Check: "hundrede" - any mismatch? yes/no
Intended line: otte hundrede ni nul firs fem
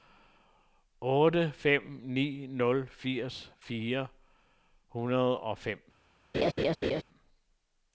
yes